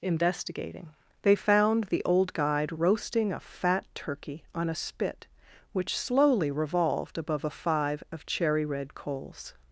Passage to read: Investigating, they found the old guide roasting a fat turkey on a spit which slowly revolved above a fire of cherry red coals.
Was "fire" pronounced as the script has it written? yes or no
no